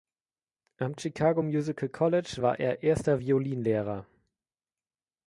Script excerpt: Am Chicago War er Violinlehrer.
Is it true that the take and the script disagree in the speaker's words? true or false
true